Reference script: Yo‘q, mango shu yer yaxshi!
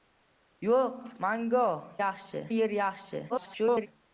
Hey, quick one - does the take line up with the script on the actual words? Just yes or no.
no